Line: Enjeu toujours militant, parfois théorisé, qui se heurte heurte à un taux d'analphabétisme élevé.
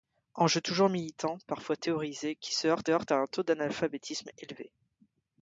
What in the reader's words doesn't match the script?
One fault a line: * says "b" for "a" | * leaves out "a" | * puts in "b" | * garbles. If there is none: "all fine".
all fine